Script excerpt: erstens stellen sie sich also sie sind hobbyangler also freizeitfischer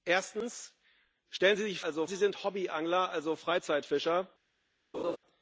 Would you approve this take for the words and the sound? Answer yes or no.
no